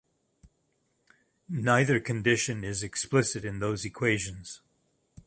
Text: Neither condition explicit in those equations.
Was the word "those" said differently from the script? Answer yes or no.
no